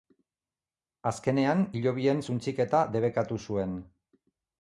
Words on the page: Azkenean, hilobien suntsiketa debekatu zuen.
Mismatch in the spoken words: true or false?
false